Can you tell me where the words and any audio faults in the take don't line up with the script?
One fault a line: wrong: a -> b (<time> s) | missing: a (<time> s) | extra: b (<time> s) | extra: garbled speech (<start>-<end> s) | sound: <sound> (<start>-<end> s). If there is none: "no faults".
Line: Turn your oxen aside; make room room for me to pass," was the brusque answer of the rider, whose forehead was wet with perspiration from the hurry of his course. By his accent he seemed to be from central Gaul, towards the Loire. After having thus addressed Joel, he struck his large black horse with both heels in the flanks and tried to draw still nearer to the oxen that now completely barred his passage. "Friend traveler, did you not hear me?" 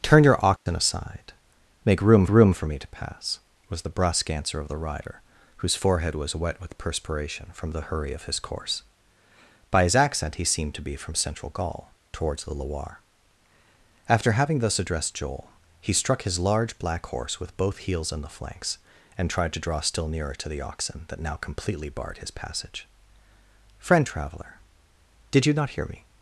sound: dropout (0.6-0.7 s)